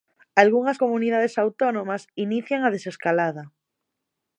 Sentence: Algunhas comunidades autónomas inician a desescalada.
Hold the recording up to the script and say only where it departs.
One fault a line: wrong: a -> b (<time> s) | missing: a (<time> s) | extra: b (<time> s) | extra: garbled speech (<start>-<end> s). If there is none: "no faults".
no faults